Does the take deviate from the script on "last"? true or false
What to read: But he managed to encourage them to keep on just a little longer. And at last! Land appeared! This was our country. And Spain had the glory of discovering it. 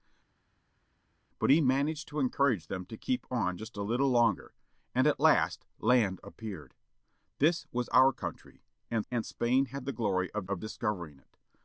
false